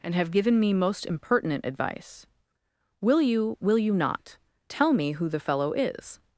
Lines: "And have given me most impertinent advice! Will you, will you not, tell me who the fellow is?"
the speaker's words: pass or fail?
pass